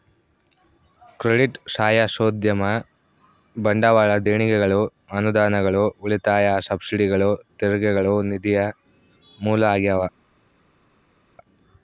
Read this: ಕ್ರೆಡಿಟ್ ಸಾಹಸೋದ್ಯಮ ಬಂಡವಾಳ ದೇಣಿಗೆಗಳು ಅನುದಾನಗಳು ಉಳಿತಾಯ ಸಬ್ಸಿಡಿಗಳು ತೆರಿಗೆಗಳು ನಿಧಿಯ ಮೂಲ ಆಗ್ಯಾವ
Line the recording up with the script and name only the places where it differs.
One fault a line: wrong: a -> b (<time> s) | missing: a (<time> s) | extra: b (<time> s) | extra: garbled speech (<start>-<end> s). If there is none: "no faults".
no faults